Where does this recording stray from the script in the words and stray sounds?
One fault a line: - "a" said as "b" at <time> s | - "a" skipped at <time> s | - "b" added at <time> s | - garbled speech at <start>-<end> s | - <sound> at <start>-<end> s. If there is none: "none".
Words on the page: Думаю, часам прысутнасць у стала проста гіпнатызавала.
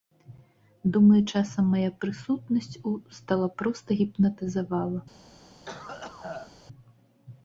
- "мая" added at 1.8 s
- cough at 5.7-6.5 s